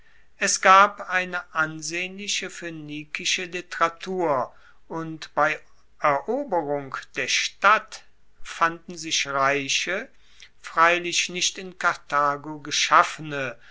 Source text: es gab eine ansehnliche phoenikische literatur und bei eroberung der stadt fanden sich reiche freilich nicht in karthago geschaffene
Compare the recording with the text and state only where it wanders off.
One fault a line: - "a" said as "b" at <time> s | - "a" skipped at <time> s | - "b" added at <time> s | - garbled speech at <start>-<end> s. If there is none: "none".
none